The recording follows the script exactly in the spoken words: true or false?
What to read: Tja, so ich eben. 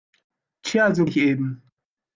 true